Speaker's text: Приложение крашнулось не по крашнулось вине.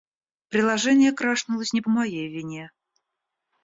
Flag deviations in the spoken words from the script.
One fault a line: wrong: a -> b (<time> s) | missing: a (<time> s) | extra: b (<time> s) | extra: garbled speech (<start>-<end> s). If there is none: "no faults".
wrong: крашнулось -> моей (1.9 s)